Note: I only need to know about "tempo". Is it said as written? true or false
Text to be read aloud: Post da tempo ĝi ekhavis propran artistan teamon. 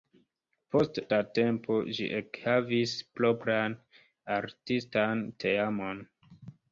true